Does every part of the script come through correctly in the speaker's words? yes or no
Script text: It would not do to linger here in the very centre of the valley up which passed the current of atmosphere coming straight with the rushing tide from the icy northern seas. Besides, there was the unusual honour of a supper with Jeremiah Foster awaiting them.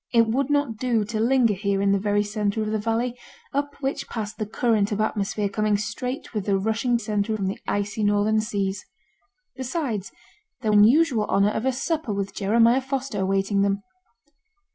no